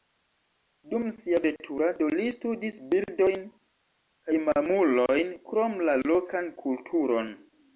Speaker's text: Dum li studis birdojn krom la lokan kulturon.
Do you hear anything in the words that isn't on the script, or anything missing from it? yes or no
yes